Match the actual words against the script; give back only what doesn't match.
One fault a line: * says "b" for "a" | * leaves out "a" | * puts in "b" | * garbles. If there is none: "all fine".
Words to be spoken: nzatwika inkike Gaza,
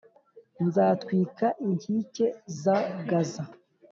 * puts in "za"